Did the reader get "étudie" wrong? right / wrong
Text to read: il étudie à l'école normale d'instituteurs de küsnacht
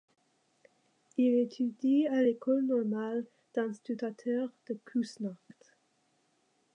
right